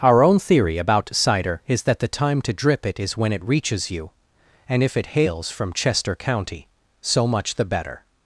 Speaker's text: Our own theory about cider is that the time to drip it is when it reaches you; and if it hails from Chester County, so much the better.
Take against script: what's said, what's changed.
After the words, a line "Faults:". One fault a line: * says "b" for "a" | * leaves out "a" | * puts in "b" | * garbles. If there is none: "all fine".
Our own theory about cider is that the time to drip it is when it reaches you; and if it hails from Chester County, so much the better.
Faults:
all fine